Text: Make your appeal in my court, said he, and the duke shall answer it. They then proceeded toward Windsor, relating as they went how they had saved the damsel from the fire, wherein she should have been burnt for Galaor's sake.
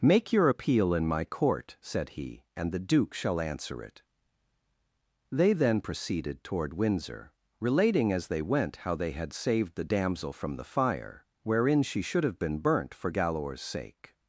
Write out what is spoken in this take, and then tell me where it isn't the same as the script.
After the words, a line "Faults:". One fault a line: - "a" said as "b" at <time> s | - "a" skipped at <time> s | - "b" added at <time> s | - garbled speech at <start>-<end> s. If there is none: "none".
Make your appeal in my court, said he, and the duke shall answer it. They then proceeded toward Windsor, relating as they went how they had saved the damsel from the fire, wherein she should have been burnt for Galaor's sake.
Faults:
none